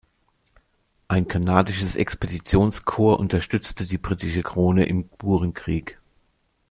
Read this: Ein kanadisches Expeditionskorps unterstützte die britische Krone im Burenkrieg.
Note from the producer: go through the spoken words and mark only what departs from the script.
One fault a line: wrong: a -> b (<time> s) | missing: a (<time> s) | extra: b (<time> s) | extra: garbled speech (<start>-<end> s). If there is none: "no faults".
no faults